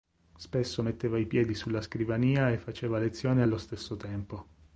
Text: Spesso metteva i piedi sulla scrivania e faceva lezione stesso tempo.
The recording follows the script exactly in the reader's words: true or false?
false